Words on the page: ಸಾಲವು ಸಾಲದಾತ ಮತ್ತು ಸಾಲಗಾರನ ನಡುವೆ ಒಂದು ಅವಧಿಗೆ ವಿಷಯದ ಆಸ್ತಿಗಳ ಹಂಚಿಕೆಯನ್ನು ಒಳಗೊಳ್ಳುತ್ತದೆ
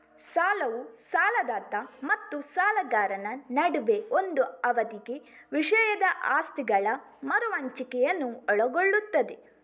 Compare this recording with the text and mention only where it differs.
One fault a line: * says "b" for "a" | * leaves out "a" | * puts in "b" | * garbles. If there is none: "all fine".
* puts in "ಮರು"